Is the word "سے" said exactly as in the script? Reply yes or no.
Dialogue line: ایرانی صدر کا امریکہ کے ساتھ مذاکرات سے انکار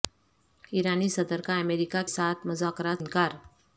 no